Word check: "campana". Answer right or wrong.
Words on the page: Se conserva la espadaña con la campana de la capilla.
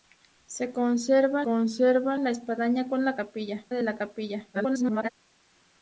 wrong